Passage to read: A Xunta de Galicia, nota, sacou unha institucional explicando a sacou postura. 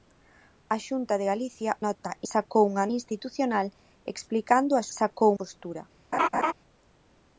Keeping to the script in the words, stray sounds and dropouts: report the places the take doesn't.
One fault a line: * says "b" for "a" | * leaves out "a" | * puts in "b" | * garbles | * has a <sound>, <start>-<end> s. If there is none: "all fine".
* has a laugh, 6.1-6.5 s